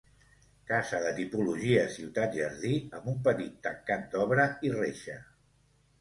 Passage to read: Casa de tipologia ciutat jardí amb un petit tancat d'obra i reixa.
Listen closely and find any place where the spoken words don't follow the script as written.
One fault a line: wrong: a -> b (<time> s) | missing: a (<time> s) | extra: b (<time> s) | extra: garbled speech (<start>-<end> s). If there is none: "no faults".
no faults